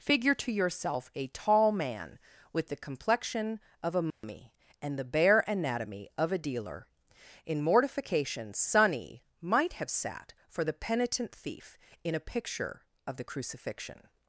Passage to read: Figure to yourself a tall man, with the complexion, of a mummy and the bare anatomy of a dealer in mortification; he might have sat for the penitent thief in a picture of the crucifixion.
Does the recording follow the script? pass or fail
fail